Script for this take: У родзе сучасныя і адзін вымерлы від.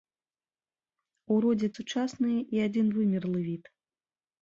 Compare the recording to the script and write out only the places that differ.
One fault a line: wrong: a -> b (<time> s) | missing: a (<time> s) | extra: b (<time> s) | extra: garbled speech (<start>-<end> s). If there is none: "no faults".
no faults